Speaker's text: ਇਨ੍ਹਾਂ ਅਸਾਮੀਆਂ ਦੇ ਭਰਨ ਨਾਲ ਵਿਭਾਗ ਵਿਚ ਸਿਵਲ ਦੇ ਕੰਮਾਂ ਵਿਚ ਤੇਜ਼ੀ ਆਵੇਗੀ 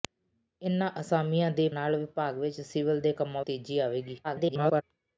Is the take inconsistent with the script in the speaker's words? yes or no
yes